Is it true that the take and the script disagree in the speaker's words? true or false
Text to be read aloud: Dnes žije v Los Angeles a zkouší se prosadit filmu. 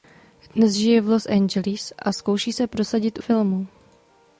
false